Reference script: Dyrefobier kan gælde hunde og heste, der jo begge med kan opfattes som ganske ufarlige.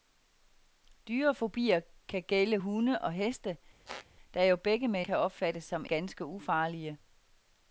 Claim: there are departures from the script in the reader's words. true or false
false